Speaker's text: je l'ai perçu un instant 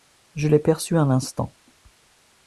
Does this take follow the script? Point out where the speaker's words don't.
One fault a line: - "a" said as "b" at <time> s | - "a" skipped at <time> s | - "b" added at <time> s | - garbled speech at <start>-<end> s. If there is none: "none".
none